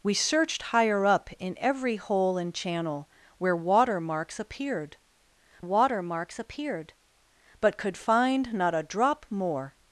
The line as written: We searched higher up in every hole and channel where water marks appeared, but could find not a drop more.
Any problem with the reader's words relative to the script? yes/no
yes